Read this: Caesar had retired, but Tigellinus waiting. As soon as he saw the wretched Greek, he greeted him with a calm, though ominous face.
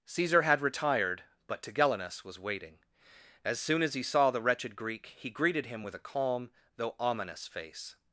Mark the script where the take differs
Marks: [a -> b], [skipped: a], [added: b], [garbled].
Caesar had retired, but Tigellinus [added: was] waiting. As soon as he saw the wretched Greek, he greeted him with a calm, though ominous face.